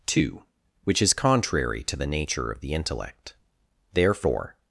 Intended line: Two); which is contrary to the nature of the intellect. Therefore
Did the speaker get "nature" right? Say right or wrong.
right